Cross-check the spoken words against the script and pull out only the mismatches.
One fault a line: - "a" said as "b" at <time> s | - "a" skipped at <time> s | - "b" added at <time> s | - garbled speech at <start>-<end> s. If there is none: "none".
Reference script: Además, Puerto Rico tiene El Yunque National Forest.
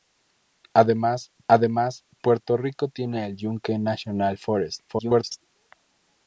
- "además" added at 1.5 s
- garbled speech at 4.9-5.4 s